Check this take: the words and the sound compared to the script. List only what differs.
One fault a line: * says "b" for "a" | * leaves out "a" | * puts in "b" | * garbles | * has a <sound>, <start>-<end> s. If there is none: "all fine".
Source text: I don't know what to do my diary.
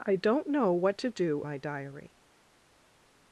all fine